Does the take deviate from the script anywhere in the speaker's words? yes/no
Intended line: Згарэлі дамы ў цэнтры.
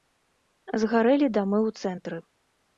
no